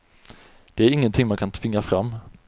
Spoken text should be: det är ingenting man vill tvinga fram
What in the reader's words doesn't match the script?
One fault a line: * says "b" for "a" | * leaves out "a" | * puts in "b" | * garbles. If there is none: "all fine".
* says "kan" for "vill"